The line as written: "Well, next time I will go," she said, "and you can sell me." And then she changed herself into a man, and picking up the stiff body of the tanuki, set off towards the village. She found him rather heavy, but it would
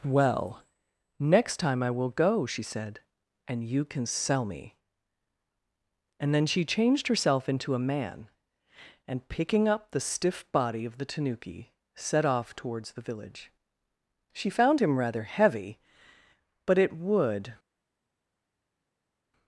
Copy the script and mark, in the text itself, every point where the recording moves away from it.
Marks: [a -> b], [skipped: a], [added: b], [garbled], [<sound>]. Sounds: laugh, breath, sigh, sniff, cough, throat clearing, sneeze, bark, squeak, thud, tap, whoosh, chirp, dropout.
"Well, next time I will go," she said, "and you can sell me." And then she changed herself into a man, and picking up the stiff body of the tanuki, set off towards the village. She found him rather heavy, but it would